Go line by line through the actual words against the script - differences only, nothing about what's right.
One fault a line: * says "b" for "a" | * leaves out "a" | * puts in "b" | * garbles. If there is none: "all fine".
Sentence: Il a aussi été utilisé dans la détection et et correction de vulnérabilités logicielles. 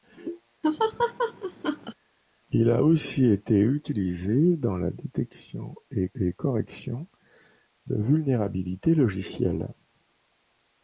all fine